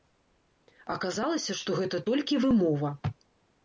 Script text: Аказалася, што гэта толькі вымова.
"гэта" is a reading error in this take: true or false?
false